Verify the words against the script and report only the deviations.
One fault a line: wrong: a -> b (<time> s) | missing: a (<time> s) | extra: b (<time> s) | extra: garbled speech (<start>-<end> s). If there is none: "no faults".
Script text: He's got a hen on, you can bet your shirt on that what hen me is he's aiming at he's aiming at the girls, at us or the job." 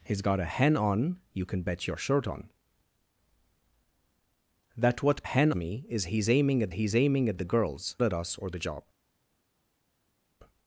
no faults